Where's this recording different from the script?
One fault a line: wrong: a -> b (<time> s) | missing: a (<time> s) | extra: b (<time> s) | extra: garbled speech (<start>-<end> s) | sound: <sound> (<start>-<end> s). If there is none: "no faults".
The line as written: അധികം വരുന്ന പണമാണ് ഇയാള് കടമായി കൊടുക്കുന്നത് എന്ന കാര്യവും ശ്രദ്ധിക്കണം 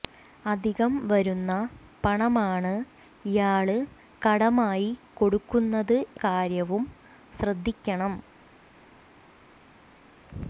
missing: എന്ന (6.0 s)